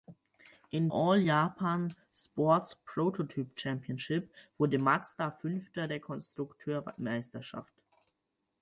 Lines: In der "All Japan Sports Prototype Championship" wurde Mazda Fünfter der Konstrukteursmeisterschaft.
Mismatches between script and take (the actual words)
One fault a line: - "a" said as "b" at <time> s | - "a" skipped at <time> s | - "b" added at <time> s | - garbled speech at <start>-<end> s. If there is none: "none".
- "der" skipped at 0.9 s